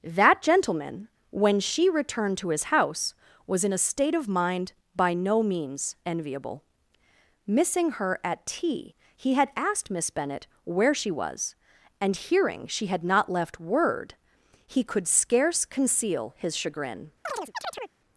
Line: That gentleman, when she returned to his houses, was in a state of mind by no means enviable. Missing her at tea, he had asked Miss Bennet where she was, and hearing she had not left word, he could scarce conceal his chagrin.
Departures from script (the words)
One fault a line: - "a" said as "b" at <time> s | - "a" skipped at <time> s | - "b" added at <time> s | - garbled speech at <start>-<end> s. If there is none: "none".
- "houses" said as "house" at 2.6 s